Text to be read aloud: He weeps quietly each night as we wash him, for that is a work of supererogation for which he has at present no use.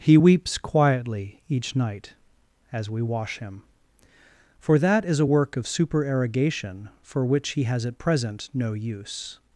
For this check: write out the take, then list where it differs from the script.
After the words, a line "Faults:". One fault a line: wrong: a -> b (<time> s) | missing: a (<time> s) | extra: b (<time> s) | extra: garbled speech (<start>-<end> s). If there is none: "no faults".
He weeps quietly each night as we wash him, for that is a work of supererogation for which he has at present no use.
Faults:
no faults